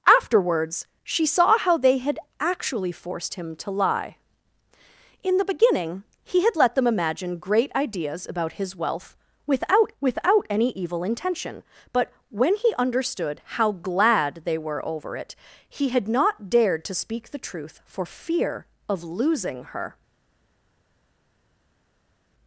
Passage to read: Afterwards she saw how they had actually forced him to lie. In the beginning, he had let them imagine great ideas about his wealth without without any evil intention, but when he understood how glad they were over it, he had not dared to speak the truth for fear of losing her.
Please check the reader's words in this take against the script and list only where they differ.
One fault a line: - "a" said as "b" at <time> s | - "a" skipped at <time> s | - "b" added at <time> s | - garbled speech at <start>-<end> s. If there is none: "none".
none